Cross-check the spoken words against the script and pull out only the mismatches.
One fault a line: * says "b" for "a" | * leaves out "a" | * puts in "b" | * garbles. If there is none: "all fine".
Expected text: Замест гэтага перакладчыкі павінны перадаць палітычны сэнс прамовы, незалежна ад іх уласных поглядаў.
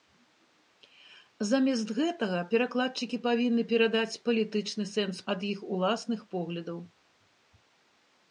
* leaves out "прамовы незалежна"